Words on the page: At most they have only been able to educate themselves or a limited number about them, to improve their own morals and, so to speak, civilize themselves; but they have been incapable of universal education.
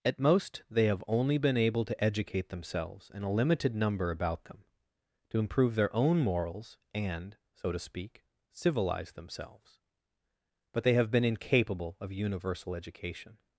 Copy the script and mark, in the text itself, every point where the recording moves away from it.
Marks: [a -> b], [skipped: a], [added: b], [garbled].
At most they have only been able to educate themselves [or -> and] a limited number about them, to improve their own morals and, so to speak, civilize themselves; but they have been incapable of universal education.